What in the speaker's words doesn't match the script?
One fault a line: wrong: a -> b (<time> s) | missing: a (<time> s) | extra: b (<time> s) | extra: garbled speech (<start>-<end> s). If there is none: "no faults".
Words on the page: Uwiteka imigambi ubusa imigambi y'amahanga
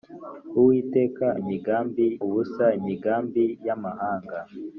no faults